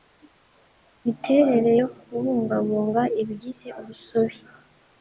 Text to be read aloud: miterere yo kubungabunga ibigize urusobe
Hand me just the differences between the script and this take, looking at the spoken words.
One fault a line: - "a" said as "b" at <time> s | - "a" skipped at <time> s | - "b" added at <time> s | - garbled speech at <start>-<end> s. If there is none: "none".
none